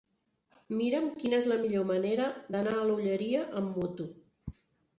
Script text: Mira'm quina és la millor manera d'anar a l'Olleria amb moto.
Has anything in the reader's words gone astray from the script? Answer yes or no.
no